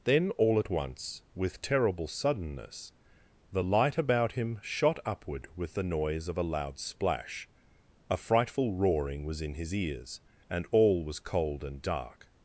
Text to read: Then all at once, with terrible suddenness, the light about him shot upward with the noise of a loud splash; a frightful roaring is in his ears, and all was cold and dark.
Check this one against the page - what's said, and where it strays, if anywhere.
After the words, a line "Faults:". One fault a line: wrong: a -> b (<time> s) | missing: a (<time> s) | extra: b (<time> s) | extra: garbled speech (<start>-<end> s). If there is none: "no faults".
Then all at once, with terrible suddenness, the light about him shot upward with the noise of a loud splash; a frightful roaring was in his ears, and all was cold and dark.
Faults:
wrong: is -> was (9.2 s)